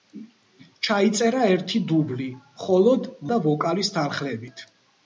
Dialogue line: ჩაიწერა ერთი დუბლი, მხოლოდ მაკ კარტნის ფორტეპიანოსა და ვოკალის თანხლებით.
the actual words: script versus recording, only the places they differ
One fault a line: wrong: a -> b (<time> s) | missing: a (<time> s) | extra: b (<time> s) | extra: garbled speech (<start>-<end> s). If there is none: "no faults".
missing: მაკ კარტნის ფორტეპიანოსა (3.1 s)